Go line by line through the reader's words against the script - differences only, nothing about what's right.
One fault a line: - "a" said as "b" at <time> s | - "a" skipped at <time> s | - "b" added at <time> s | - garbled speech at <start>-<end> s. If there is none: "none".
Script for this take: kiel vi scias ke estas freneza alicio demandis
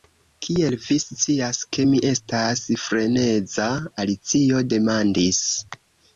- "mi" added at 1.9 s